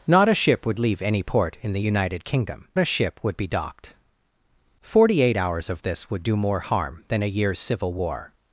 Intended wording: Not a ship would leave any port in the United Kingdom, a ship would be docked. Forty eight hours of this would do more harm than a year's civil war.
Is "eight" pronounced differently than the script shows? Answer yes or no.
no